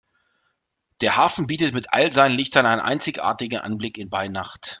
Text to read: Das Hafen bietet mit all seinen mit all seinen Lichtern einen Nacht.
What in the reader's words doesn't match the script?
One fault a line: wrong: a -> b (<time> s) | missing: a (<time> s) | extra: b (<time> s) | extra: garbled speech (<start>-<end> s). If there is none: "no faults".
wrong: Das -> Der (1.0 s)
wrong: mit all seinen Lichtern einen -> Lichtern einen einzigartigen Anblick bei (2.4 s)